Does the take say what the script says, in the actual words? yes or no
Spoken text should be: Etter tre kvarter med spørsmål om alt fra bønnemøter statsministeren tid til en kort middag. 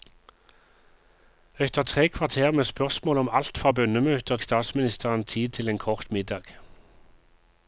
yes